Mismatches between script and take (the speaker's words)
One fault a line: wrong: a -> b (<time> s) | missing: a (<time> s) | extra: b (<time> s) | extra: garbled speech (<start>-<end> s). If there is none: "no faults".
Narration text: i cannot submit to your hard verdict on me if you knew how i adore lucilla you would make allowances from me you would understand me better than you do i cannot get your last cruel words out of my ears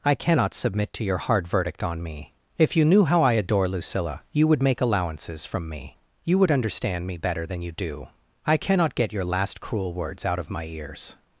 no faults